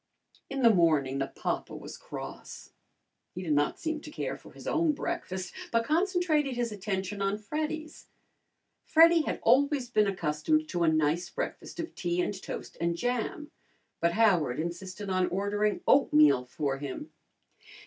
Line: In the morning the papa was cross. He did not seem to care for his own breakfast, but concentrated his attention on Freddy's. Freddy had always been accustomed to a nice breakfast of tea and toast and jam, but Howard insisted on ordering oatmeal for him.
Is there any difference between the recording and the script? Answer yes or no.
no